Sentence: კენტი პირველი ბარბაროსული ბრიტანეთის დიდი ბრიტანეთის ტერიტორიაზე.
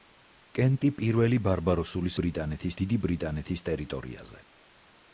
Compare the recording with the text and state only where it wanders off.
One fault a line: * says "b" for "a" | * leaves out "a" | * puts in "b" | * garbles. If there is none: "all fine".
all fine